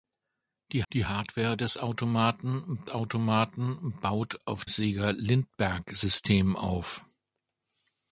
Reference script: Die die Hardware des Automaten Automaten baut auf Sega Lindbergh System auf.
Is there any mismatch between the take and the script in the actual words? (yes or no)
no